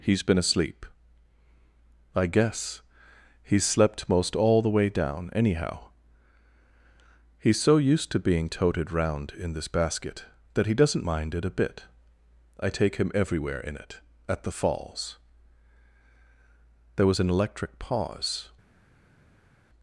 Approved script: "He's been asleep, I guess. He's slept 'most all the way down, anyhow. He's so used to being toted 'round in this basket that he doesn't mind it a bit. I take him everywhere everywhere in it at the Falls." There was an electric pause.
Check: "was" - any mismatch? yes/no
no